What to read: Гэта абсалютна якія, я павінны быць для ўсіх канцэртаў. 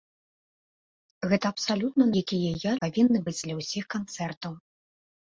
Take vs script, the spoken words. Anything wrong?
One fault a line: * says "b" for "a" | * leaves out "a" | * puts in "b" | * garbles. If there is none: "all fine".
all fine